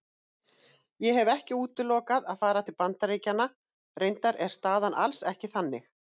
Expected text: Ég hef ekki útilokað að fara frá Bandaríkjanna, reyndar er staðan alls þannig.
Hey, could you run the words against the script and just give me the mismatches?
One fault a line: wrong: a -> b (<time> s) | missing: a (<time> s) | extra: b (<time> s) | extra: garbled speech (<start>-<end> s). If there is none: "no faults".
wrong: frá -> til (2.7 s)
extra: ekki (5.3 s)